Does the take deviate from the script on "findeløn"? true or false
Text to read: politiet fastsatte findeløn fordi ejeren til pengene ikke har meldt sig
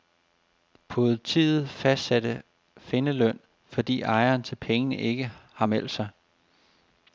false